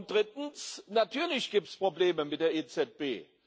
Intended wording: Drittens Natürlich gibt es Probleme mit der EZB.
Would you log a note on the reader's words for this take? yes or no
no